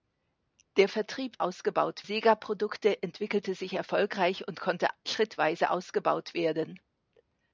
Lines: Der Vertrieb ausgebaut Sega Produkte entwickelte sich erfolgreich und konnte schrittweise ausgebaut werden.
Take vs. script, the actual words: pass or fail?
pass